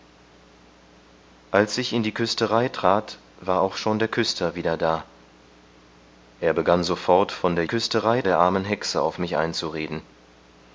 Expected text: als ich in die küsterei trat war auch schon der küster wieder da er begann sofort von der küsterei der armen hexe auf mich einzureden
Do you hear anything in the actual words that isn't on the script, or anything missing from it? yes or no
no